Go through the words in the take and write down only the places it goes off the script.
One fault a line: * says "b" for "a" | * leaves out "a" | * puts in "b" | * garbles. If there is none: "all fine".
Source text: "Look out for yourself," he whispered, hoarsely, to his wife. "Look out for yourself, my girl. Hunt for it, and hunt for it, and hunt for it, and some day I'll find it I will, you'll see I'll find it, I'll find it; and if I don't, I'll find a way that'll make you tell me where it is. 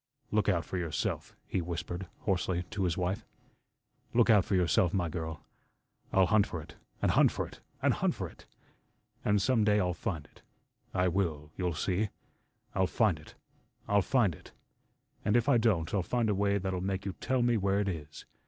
* puts in "I'll"